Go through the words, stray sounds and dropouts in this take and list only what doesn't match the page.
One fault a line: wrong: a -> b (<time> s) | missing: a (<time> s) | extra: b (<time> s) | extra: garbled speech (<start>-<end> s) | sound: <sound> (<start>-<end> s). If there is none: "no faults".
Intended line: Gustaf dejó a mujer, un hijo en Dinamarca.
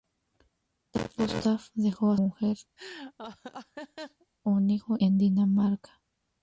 sound: laugh (2.8-4.3 s)